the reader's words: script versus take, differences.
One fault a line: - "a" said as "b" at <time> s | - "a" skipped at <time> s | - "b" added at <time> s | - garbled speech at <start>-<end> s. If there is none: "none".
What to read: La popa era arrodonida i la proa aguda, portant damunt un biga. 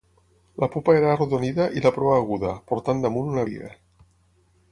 - "un" said as "una" at 3.3 s